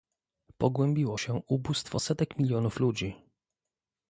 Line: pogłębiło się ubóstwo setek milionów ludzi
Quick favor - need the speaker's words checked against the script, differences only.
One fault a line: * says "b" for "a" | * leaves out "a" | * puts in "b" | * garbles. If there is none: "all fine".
all fine